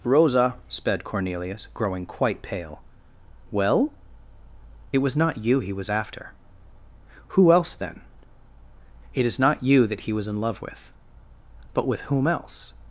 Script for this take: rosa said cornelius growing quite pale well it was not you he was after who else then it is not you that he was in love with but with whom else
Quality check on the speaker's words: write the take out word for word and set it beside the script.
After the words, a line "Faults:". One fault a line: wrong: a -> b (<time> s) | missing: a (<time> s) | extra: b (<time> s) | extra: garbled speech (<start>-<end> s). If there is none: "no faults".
rosa sped cornelius growing quite pale well it was not you he was after who else then it is not you that he was in love with but with whom else
Faults:
wrong: said -> sped (0.7 s)